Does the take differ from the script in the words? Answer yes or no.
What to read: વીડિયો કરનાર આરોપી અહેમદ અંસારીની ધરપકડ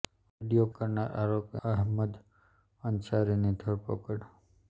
no